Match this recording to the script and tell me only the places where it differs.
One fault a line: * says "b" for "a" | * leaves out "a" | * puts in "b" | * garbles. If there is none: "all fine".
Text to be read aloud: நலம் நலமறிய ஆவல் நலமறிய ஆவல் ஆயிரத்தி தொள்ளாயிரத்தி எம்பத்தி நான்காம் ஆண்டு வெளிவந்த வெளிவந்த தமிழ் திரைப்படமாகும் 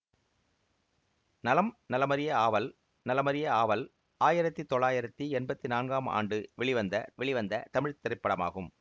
all fine